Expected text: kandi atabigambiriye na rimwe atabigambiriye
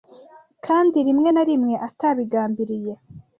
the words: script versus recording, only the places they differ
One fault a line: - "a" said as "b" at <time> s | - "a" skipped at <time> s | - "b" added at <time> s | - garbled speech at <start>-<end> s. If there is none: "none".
- "atabigambiriye" said as "rimwe" at 1.1 s